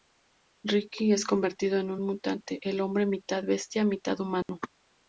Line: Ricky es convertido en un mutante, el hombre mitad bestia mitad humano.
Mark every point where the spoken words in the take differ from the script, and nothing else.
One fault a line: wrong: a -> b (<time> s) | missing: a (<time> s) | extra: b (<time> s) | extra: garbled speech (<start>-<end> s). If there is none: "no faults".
no faults